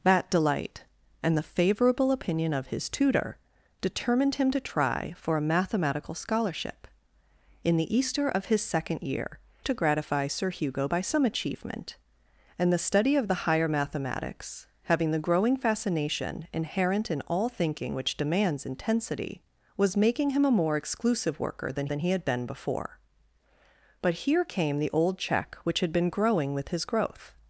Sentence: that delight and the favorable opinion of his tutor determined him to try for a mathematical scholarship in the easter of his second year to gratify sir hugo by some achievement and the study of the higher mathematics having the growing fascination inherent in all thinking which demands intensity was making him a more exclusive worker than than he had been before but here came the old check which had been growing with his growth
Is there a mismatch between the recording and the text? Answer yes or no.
no